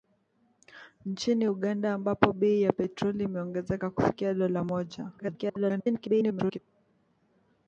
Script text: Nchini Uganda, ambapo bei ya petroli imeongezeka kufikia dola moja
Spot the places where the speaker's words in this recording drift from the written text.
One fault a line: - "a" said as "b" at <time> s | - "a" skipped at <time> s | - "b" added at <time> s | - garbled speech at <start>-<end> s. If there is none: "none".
- garbled speech at 5.2-6.6 s